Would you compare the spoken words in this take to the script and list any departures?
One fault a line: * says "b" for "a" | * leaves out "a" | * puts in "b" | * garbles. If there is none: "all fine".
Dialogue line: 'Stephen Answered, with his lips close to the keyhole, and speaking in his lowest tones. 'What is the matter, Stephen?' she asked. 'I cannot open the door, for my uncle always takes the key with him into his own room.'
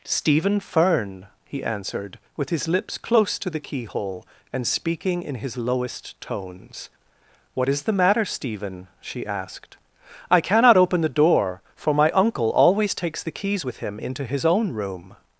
* puts in "Fern he"
* says "keys" for "key"